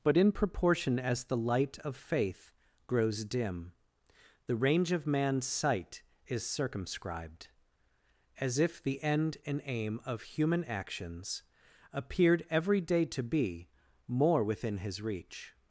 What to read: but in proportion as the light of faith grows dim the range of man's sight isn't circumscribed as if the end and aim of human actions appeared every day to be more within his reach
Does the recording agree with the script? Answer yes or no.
no